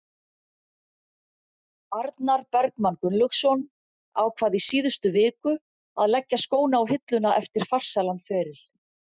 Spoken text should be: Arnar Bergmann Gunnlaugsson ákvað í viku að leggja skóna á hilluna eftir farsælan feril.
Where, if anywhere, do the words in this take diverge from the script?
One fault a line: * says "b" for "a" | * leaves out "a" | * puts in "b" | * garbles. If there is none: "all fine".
* puts in "síðustu"